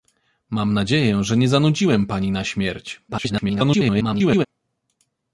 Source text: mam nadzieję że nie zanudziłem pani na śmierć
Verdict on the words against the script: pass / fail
fail